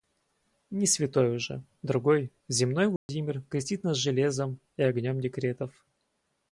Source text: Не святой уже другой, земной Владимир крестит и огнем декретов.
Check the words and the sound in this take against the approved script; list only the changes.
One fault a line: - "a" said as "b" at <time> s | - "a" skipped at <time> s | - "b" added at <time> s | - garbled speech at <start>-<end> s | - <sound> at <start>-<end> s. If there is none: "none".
- dropout at 3.0-3.1 s
- "нас железом" added at 3.8 s